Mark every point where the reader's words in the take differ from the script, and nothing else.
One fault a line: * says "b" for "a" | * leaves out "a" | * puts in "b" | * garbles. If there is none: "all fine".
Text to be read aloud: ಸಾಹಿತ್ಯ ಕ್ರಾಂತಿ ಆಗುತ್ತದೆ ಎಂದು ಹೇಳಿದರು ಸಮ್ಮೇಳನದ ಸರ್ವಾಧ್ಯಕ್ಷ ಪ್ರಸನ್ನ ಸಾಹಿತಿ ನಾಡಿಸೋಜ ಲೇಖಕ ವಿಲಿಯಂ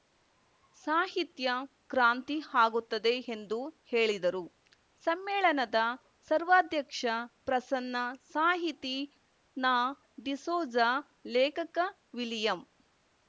all fine